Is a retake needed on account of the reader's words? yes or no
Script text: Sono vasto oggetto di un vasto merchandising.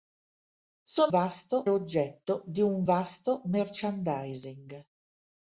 no